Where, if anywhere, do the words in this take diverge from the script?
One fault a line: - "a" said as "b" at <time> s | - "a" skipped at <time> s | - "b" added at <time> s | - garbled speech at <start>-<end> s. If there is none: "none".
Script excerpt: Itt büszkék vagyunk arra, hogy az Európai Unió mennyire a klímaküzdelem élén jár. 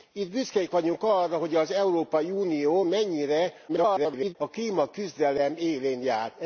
- garbled speech at 3.7-4.4 s